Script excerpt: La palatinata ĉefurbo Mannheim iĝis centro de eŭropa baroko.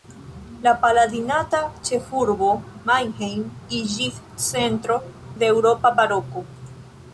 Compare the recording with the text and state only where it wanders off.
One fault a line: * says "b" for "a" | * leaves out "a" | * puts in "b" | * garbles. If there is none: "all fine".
all fine